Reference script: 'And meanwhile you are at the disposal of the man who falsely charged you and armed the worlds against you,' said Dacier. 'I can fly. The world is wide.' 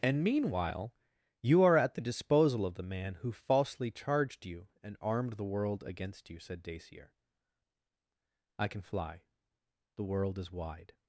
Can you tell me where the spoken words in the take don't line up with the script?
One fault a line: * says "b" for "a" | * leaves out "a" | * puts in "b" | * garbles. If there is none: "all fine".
* says "world" for "worlds"